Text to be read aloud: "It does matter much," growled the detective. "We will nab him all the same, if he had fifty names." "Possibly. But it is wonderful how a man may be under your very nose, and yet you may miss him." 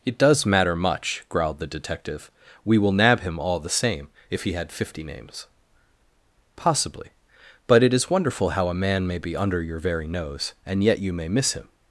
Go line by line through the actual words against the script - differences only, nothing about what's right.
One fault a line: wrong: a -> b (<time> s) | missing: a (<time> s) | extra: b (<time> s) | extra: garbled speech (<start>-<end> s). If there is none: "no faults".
no faults